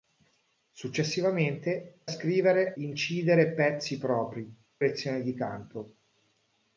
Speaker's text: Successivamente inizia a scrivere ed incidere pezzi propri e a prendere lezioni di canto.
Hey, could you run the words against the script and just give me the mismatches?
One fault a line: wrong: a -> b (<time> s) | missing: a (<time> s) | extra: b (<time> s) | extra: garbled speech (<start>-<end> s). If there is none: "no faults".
missing: inizia (2.0 s)
missing: ed (2.8 s)
missing: e a prendere (4.5 s)